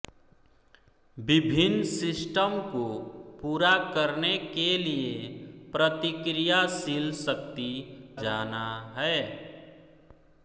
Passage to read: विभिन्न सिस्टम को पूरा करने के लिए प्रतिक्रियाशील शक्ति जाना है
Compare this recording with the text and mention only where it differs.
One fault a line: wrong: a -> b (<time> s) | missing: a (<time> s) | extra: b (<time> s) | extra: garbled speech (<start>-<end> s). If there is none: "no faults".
no faults